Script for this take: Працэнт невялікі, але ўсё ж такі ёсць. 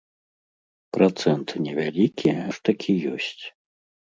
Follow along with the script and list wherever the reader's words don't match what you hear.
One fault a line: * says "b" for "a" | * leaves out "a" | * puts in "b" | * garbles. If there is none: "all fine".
* leaves out "але ўсё"